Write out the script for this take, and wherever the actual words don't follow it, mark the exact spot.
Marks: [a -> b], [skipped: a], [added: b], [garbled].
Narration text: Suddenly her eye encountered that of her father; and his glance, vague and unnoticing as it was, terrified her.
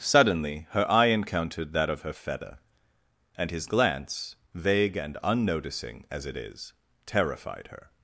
Suddenly her eye encountered that of her [father; -> feather] and his glance, vague and unnoticing as it [was, -> is] terrified her.